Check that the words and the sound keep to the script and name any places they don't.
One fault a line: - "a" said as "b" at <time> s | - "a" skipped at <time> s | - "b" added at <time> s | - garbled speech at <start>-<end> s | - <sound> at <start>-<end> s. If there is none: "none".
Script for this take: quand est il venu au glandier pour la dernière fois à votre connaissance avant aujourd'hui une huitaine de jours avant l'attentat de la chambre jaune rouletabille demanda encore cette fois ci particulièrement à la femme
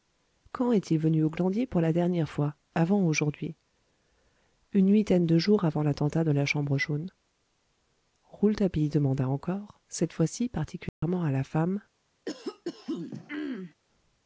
- "à votre connaissance" skipped at 2.5 s
- dropout at 10.9-11.0 s
- throat clearing at 12.3-13.7 s